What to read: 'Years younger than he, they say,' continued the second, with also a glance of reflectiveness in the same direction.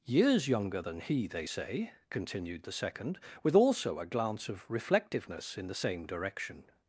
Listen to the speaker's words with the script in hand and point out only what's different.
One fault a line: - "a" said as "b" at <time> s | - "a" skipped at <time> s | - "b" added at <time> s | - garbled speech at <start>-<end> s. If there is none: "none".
none